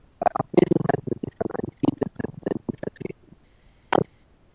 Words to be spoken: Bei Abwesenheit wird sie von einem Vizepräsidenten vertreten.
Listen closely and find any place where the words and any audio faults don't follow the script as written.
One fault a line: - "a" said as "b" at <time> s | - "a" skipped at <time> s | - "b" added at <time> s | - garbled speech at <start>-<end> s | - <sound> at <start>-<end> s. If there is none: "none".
- chirp at 3.9-4.1 s